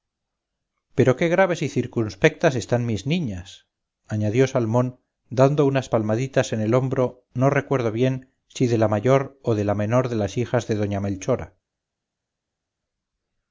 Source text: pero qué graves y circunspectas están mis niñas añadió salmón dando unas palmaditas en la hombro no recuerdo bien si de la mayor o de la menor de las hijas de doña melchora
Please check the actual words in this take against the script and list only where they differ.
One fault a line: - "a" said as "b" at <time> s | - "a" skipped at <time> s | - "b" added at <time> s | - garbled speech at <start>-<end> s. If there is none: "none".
- "la" said as "el" at 6.6 s